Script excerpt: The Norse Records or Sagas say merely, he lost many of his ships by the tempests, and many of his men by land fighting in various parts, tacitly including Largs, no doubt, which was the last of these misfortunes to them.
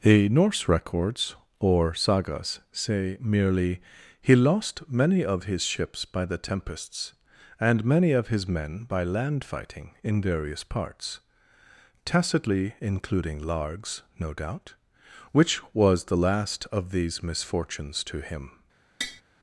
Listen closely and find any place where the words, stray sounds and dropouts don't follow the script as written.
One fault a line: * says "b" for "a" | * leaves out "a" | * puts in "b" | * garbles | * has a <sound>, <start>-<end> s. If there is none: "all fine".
* says "him" for "them"
* has a tap, 19.0-19.2 s